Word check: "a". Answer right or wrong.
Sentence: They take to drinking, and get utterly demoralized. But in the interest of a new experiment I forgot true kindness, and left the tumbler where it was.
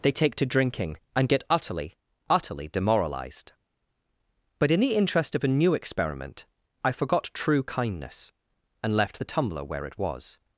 right